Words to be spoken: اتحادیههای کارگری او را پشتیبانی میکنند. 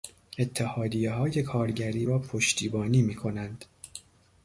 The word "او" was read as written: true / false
false